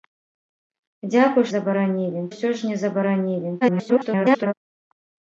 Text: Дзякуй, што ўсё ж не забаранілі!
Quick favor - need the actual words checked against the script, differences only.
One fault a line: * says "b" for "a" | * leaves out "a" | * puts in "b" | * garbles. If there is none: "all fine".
* says "забаранілі" for "што"
* garbles